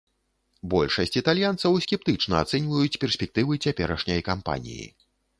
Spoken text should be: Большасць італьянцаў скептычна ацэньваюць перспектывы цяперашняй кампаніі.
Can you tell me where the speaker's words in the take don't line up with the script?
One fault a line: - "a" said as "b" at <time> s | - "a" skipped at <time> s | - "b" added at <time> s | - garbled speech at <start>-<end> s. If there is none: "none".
none